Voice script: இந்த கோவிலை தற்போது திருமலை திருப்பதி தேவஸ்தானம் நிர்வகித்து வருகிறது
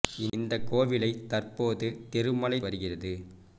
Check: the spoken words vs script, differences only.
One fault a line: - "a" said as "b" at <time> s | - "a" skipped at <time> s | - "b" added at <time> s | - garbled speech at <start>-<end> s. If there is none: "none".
- "திருப்பதி தேவஸ்தானம் நிர்வகித்து" skipped at 2.6 s